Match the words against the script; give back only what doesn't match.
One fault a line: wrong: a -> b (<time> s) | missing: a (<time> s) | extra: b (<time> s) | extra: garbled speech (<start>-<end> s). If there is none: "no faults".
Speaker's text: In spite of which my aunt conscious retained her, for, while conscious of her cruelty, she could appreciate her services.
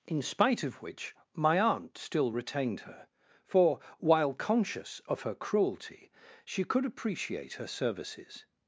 wrong: conscious -> still (2.0 s)